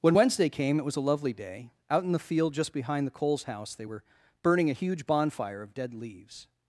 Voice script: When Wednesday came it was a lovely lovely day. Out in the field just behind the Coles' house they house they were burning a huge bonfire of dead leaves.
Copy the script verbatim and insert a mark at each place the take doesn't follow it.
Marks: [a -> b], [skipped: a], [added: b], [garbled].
When Wednesday came it was a lovely [skipped: lovely] day. Out in the field just behind the Coles' house they [skipped: house they] were burning a huge bonfire of dead leaves.